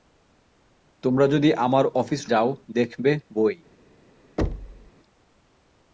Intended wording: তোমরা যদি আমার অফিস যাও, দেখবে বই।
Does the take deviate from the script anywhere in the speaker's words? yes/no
no